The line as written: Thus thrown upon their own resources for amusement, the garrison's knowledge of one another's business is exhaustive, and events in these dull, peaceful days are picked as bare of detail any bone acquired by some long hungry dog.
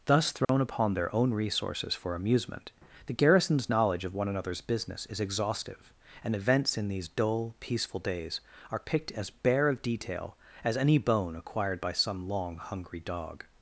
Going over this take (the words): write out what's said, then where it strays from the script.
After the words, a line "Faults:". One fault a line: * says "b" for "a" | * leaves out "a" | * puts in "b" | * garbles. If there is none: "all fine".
Thus thrown upon their own resources for amusement, the garrison's knowledge of one another's business is exhaustive, and events in these dull, peaceful days are picked as bare of detail as any bone acquired by some long hungry dog.
Faults:
* puts in "as"